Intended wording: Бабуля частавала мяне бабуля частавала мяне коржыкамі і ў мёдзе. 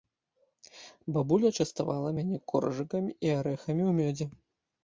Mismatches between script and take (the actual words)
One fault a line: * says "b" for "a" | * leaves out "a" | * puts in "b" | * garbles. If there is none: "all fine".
* leaves out "бабуля частавала мяне"
* puts in "арэхамі"